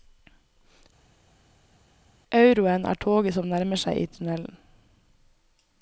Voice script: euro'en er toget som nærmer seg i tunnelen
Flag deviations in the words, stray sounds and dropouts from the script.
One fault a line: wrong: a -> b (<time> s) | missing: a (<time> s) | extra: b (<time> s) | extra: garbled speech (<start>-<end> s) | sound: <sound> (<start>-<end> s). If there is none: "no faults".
no faults